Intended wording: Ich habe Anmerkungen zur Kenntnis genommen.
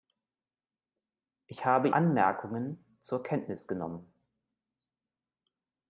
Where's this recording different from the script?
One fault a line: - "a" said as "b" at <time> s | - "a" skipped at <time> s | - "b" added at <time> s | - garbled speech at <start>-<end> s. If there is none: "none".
none